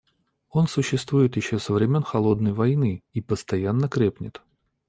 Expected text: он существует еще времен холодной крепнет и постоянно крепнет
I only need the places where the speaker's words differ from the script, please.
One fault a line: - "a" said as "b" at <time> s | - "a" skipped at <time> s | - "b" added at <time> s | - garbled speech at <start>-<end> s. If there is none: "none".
- "со" added at 1.6 s
- "крепнет" said as "войны" at 2.5 s